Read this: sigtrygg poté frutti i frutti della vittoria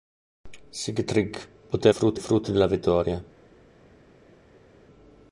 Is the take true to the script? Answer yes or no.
yes